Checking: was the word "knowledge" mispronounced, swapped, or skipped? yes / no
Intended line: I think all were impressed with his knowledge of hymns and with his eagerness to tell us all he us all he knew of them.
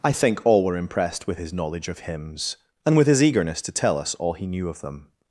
no